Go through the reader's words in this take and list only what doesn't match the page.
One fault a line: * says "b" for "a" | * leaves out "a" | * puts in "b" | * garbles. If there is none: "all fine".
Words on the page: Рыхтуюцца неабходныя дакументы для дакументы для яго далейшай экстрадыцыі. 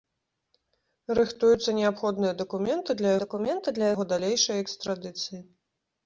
all fine